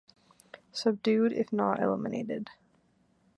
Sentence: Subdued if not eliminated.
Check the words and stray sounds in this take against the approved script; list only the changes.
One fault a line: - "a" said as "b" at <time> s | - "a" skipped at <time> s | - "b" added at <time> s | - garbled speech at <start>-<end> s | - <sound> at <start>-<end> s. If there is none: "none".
none